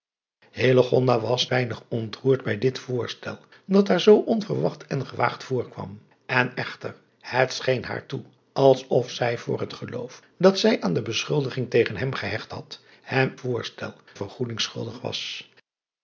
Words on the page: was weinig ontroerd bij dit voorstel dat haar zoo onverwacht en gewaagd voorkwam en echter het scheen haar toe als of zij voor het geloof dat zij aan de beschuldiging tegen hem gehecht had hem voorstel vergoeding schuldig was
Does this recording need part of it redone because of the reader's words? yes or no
no